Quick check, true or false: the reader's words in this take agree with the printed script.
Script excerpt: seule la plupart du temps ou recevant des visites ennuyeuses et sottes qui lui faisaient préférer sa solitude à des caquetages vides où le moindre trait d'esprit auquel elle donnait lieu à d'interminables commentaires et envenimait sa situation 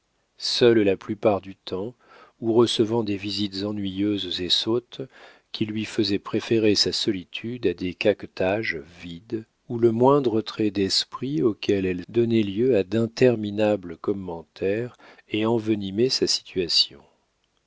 true